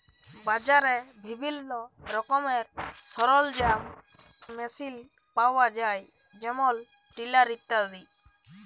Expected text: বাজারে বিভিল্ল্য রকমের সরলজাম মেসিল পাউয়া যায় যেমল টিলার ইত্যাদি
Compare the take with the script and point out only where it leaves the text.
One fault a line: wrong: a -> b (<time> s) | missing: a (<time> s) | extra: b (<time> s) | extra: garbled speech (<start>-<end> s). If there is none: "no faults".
no faults